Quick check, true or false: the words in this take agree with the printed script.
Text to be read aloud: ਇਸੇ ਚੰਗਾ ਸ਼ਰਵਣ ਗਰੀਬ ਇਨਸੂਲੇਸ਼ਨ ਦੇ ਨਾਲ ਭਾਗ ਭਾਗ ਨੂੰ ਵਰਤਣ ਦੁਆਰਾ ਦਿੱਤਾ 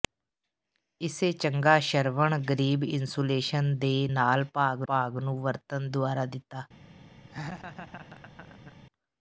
true